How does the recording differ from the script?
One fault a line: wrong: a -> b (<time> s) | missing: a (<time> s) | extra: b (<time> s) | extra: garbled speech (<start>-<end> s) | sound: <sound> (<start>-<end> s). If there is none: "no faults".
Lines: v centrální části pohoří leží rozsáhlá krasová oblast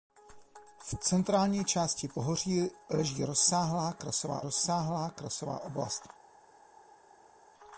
extra: rozsáhlá krasová (4.4 s)